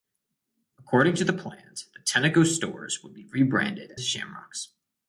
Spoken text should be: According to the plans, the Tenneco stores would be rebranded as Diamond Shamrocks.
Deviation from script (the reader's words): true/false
true